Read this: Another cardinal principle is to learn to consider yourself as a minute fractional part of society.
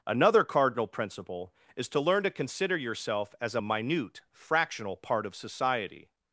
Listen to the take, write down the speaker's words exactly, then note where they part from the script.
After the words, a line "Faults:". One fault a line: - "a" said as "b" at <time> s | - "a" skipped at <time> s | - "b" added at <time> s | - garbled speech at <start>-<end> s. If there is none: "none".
Another cardinal principle is to learn to consider yourself as a minute fractional part of society.
Faults:
none